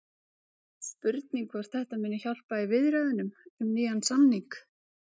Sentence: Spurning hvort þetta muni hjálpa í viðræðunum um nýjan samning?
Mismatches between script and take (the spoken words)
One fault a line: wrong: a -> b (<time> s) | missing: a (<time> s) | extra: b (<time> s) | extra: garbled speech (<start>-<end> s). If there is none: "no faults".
no faults